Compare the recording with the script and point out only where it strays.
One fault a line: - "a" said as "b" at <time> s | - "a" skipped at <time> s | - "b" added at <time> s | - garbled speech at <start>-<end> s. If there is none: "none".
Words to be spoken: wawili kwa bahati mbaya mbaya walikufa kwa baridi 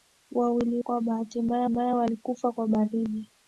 none